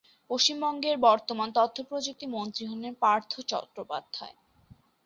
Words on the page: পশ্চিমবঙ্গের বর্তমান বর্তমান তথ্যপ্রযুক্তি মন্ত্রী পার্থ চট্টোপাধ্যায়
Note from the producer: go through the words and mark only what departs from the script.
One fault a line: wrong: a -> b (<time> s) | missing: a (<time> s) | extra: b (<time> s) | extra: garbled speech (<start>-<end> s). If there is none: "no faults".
missing: বর্তমান (1.5 s)
extra: হলেন (2.7 s)